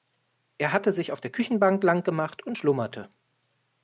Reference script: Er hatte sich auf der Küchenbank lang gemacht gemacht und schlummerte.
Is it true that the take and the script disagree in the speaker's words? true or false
true